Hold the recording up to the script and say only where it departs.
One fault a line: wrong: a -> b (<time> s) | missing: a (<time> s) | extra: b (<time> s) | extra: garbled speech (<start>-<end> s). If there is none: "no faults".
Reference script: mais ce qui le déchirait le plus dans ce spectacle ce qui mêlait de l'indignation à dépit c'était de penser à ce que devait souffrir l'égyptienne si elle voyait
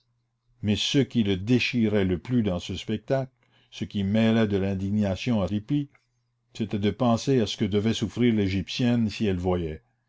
no faults